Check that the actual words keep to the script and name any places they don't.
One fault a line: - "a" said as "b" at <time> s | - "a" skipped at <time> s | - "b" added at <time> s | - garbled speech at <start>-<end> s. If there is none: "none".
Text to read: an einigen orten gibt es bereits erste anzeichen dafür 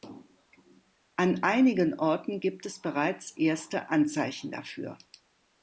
none